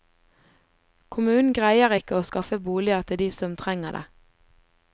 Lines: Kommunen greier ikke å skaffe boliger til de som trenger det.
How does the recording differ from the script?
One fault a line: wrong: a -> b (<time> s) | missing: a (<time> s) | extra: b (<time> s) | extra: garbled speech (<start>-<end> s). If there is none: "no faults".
no faults